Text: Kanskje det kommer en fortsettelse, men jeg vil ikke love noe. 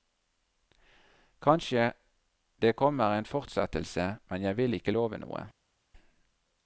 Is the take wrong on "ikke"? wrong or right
right